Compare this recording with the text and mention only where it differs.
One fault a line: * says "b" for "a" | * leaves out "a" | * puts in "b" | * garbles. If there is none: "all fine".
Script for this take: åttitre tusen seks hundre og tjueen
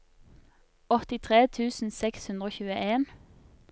all fine